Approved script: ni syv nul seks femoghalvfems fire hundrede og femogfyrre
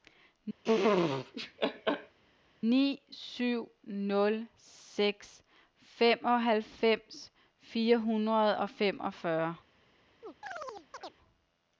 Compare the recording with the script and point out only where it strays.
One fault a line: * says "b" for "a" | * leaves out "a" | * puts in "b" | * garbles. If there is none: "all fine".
all fine